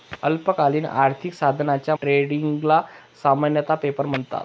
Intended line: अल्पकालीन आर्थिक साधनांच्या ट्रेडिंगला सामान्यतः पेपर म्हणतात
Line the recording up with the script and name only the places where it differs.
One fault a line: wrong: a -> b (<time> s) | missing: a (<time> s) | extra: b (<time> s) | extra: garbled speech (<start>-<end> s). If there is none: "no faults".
no faults